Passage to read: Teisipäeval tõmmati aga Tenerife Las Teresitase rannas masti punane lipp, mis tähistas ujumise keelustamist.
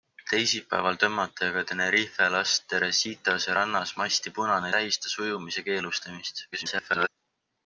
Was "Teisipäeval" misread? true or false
false